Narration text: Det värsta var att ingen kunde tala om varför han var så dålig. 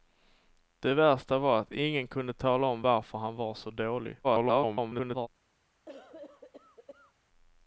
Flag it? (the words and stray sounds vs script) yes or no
yes